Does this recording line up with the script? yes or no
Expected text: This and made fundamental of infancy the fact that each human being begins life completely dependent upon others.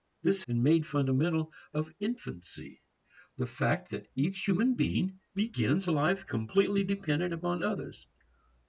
yes